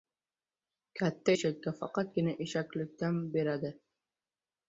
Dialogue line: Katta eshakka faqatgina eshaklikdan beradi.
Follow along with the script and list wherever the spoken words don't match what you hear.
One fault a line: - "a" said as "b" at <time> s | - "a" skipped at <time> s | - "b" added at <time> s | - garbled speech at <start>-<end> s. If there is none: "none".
none